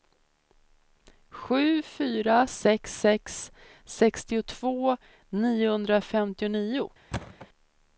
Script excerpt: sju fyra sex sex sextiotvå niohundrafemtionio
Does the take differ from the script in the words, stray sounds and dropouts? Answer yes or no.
yes